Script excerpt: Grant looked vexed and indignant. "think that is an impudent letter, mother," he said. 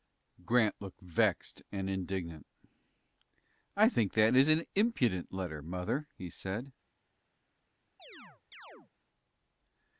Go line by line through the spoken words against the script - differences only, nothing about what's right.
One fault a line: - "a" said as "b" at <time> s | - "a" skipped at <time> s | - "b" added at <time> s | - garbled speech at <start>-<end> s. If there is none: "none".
- "I" added at 3.8 s